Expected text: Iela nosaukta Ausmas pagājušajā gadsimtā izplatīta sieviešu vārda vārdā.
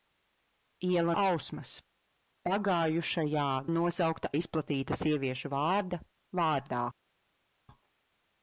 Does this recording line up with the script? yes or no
no